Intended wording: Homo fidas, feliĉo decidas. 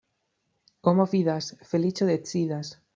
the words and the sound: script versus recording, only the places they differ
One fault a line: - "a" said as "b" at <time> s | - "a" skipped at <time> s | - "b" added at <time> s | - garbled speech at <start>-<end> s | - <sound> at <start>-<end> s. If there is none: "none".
none